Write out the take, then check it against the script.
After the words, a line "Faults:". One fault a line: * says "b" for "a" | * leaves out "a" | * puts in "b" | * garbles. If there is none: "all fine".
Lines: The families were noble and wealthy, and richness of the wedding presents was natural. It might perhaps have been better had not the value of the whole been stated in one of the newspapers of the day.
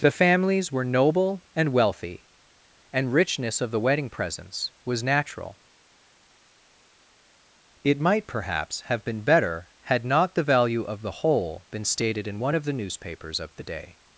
The families were noble and wealthy, and richness of the wedding presents was natural. It might perhaps have been better had not the value of the whole been stated in one of the newspapers of the day.
Faults:
all fine